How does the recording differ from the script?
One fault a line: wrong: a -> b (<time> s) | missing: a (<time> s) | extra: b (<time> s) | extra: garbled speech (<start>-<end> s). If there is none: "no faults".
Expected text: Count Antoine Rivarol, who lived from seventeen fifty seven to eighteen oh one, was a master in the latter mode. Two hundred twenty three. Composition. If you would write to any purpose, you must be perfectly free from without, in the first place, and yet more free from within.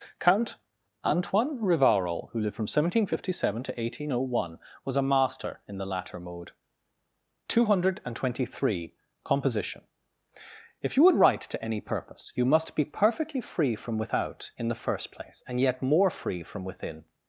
no faults